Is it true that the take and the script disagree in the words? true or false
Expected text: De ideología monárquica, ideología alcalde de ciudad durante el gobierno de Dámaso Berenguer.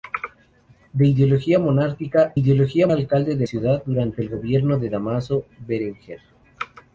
false